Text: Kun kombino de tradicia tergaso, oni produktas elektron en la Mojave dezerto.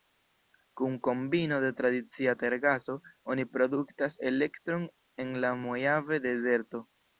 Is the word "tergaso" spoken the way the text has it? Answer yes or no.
yes